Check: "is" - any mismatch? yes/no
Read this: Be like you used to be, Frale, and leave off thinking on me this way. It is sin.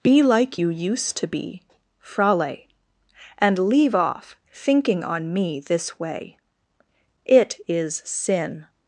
no